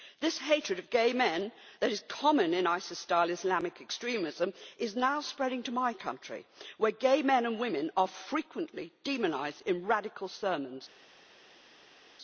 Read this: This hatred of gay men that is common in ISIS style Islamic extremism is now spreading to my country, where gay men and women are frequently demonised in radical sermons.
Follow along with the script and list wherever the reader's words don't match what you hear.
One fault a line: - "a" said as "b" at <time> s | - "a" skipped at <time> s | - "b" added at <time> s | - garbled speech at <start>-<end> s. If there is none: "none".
none